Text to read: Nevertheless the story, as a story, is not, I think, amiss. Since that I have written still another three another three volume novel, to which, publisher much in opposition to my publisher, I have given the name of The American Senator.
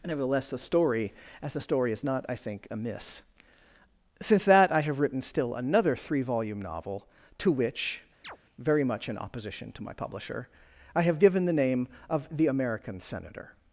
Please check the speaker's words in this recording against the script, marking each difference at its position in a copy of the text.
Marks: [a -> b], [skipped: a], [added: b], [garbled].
Nevertheless the story, as a story, is not, I think, amiss. Since that I have written still another three [skipped: another three] volume novel, to which, [publisher -> very] much in opposition to my publisher, I have given the name of The American Senator.